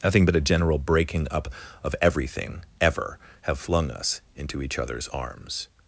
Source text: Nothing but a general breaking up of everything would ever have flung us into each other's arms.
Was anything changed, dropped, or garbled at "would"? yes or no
yes